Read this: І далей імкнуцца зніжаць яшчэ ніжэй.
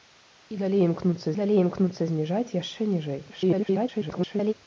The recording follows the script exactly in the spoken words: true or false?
false